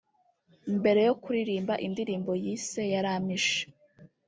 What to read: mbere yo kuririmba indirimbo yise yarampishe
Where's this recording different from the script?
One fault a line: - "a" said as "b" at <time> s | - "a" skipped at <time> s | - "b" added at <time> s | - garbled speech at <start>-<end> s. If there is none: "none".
none